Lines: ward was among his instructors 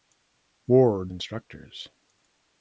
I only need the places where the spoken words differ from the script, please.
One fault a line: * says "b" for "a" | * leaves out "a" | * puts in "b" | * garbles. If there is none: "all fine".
* leaves out "was among his"